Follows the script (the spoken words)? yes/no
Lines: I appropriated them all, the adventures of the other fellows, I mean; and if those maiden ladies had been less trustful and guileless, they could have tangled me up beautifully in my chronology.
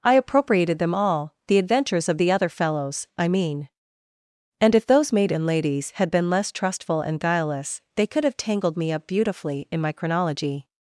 yes